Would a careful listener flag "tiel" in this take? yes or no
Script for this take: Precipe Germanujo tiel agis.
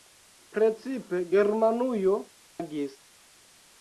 yes